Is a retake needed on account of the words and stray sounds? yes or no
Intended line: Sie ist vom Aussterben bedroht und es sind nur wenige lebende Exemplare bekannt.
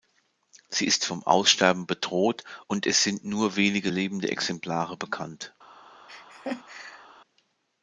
yes